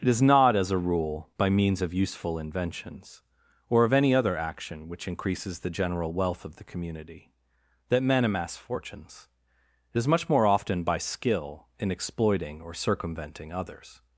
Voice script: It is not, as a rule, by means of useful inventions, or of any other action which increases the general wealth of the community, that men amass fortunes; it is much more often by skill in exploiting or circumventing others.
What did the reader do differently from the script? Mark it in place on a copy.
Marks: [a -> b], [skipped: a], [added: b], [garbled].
It is not, as a rule, by means of useful inventions, or of any other action which increases the general wealth of the community, that men amass fortunes; it is much more often by skill in exploiting or circumventing others.